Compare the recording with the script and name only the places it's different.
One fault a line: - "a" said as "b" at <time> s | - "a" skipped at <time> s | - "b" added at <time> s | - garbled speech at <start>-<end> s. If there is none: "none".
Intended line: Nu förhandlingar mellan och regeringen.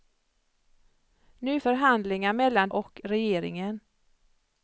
none